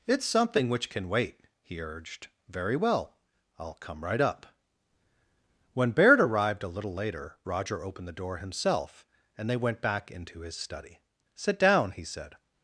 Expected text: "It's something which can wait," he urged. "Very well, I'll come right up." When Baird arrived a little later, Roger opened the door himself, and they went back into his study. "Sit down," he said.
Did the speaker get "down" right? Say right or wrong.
right